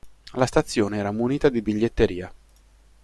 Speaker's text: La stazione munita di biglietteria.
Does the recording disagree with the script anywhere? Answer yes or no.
yes